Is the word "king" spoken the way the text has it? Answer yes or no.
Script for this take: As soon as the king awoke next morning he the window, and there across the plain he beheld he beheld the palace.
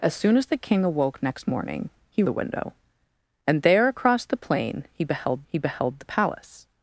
yes